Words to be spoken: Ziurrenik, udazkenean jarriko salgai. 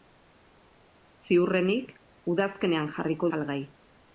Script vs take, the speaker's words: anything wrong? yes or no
no